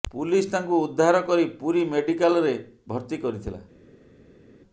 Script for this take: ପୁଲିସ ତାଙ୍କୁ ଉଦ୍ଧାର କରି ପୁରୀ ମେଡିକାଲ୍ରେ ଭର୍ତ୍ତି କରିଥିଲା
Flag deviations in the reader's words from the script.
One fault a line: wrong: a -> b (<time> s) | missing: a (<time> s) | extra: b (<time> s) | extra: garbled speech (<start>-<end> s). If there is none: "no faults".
no faults